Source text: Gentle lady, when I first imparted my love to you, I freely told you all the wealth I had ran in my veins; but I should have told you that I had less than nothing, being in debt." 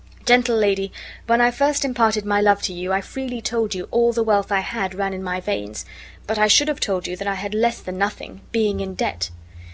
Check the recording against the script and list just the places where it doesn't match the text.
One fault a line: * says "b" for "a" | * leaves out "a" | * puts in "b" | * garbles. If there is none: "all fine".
all fine